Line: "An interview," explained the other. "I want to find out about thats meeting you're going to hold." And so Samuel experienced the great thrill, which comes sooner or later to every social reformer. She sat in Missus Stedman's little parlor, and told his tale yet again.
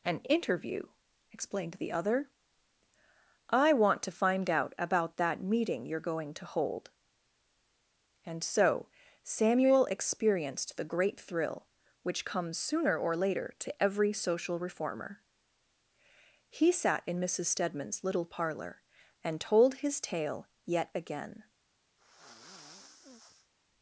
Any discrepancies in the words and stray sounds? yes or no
yes